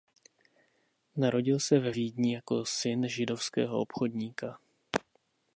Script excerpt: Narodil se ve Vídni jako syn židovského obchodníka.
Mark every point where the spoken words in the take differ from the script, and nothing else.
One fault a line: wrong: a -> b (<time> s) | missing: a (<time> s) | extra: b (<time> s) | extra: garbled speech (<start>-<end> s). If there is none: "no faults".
no faults